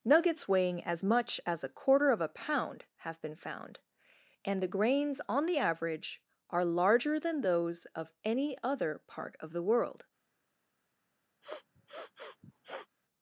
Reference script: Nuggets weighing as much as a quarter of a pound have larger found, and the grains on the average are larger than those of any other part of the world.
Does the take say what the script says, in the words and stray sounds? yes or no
no